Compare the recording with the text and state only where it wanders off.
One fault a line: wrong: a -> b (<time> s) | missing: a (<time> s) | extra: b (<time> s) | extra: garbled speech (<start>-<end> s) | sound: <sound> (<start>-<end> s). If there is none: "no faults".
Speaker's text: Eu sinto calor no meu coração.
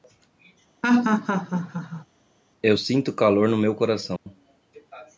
sound: laugh (0.8-2.1 s)
sound: dropout (4.2-4.3 s)